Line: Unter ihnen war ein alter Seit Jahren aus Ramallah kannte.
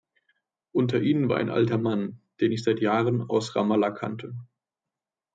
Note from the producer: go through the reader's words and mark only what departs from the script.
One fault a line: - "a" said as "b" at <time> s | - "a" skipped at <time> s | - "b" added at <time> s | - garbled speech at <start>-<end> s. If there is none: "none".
- "Mann den ich" added at 1.8 s